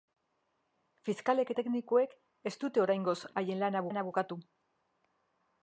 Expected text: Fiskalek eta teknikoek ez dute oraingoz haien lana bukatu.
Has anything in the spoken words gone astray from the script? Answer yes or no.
yes